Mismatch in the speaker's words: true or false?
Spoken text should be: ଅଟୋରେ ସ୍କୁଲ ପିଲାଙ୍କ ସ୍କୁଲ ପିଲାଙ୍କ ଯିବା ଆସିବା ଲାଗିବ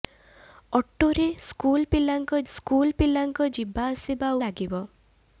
false